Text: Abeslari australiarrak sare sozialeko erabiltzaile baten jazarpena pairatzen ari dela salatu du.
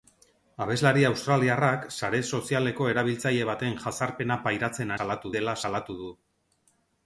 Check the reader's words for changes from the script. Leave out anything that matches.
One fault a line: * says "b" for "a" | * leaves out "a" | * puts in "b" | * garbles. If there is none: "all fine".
* says "salatu" for "ari"